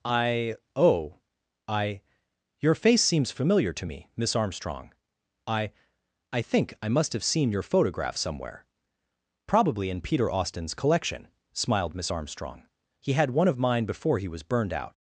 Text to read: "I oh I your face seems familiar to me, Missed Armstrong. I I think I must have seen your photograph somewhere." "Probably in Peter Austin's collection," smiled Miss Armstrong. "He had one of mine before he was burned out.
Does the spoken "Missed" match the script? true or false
false